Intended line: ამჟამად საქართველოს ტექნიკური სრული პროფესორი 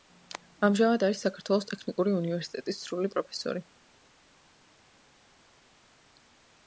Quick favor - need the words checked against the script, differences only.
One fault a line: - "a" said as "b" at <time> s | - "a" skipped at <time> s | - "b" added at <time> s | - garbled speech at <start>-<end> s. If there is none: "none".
- "არის" added at 1.1 s
- "უნივერსიტეტის" added at 2.2 s